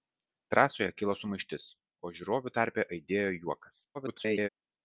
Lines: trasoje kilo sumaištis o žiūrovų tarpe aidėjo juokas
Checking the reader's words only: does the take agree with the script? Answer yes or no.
no